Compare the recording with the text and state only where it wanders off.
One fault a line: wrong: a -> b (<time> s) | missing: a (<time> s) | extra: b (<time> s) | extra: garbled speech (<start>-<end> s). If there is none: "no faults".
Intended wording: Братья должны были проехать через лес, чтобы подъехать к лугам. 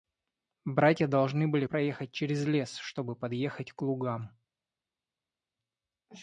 no faults